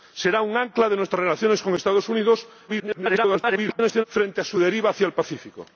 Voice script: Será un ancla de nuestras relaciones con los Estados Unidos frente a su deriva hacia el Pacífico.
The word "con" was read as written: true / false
true